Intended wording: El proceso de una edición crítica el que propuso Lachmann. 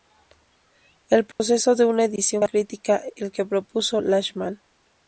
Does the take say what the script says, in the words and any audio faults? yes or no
no